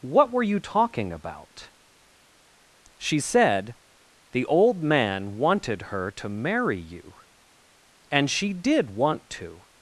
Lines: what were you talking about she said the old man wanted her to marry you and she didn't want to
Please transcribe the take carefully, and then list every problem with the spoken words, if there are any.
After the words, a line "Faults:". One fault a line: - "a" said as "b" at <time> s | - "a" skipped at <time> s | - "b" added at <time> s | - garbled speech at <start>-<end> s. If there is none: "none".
what were you talking about she said the old man wanted her to marry you and she did want to
Faults:
- "didn't" said as "did" at 8.5 s